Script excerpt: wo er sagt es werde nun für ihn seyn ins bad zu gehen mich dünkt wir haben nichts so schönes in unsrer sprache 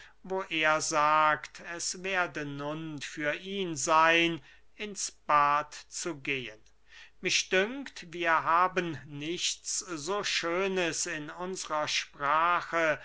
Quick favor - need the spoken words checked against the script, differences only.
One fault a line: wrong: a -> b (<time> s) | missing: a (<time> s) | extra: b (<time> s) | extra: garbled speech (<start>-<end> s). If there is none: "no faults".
no faults